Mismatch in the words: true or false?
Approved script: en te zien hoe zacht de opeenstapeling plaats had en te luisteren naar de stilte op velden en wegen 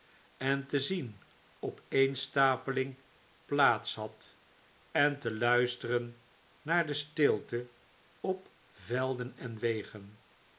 true